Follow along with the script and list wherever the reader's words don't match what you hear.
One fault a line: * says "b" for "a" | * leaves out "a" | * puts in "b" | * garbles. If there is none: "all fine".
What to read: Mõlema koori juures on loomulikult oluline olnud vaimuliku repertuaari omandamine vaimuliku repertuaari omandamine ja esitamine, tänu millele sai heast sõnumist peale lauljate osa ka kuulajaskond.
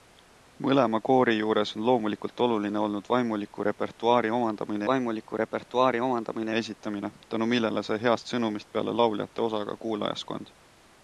all fine